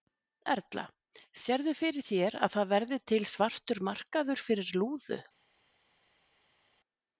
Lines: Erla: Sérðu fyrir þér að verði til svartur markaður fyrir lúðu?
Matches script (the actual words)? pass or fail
fail